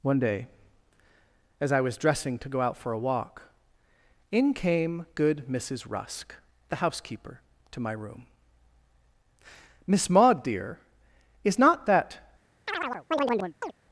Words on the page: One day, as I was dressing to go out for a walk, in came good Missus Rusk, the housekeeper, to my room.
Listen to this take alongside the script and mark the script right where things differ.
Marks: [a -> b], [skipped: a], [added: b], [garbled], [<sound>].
One day, as I was dressing to go out for a walk, in came good Missus Rusk, the housekeeper, to my room. [added: Miss Maud dear is not that] [chirp]